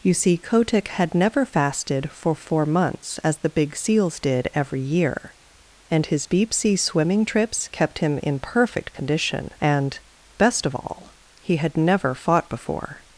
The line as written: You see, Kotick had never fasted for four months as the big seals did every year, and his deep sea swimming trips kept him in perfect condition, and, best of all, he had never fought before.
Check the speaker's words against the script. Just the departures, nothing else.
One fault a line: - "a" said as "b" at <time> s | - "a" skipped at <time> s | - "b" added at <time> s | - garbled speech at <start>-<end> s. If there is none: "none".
none